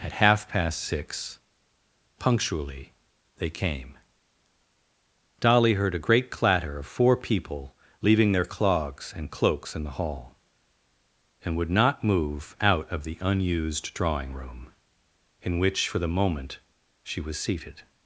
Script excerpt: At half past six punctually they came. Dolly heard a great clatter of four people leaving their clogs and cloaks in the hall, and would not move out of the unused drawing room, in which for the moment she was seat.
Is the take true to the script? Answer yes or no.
no